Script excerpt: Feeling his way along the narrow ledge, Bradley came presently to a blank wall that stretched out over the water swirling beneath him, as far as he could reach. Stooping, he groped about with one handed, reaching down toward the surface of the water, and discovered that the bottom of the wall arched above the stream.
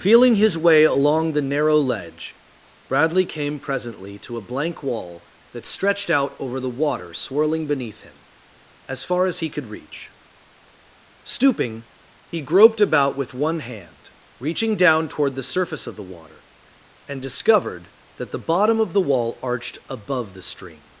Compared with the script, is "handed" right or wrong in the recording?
wrong